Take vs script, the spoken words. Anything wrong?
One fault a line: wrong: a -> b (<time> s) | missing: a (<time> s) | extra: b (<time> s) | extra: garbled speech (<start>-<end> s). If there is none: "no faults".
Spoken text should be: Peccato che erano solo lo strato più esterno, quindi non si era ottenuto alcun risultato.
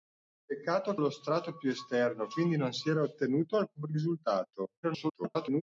missing: che erano solo (0.9 s)
extra: garbled speech (4.8-5.6 s)